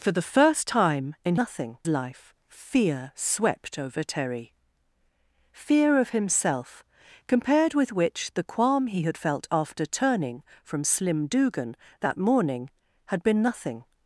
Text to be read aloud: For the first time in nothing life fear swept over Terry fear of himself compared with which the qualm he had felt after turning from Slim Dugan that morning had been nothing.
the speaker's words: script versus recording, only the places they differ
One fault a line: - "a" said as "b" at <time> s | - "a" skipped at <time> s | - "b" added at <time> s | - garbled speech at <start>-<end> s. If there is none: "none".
none